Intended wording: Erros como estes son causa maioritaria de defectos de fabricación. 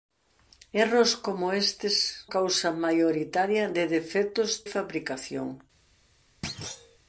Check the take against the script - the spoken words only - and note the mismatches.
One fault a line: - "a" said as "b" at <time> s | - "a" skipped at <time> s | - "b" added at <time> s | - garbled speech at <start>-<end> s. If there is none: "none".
- "son" skipped at 2.3 s
- "de" skipped at 4.6 s